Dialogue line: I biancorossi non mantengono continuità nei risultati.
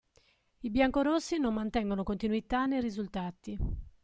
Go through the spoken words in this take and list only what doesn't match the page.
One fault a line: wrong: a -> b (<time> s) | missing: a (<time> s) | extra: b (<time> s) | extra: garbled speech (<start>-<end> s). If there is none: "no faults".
no faults